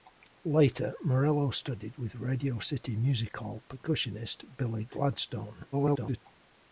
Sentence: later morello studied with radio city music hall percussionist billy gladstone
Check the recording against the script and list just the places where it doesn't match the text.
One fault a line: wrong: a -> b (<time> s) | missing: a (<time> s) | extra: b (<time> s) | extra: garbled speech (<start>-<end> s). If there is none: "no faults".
extra: garbled speech (5.7-6.2 s)